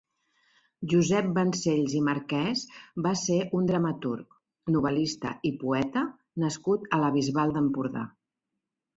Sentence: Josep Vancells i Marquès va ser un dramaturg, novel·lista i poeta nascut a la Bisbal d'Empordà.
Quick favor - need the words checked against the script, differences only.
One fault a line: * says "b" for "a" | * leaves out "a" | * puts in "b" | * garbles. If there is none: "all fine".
all fine